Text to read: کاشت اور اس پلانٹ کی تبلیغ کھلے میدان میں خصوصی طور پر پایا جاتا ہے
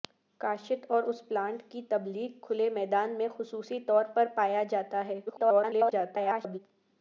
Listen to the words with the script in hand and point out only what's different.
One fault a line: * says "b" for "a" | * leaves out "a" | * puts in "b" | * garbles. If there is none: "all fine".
* garbles